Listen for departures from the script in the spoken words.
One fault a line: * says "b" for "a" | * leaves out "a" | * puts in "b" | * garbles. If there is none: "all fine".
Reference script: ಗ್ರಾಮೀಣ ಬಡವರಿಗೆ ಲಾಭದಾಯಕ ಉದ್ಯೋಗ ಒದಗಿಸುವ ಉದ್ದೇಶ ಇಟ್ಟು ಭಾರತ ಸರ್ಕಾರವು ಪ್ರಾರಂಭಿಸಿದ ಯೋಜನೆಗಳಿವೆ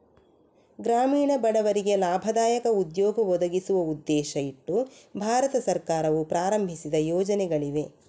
all fine